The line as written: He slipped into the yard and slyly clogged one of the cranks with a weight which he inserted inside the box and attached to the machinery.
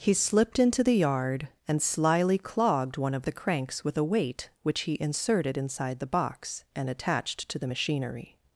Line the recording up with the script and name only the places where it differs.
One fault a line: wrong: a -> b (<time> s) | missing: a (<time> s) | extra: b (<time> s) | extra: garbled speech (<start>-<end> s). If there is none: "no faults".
no faults